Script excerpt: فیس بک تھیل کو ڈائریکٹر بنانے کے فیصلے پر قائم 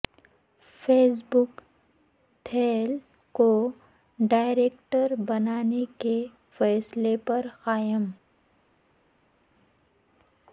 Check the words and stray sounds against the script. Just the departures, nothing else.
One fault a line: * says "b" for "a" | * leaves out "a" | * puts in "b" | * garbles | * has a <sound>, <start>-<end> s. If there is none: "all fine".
all fine